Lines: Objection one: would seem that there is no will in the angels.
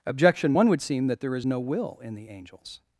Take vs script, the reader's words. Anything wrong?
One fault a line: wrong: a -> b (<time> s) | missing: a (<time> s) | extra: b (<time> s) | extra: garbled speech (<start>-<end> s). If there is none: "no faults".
no faults